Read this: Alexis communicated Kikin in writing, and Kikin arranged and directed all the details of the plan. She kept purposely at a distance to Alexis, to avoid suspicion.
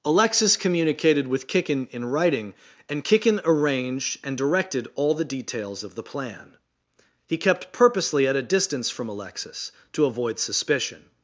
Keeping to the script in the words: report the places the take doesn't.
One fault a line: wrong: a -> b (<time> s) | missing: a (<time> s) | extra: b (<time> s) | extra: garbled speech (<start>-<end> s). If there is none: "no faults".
extra: with (1.3 s)
wrong: She -> He (7.3 s)
wrong: to -> from (8.9 s)